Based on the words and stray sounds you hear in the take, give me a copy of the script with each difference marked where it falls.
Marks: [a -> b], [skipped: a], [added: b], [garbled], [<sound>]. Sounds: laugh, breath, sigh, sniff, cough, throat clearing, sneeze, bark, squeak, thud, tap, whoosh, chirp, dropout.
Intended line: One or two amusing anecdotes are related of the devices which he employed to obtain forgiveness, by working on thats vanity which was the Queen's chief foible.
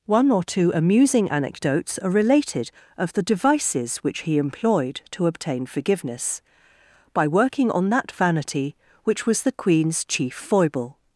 One or two amusing anecdotes are related of the devices which he employed to obtain forgiveness, by working on [thats -> that] vanity which was the Queen's chief foible.